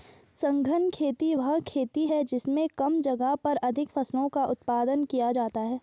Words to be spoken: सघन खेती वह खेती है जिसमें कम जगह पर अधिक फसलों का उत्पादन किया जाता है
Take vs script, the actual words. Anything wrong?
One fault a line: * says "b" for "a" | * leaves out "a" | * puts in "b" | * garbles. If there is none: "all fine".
all fine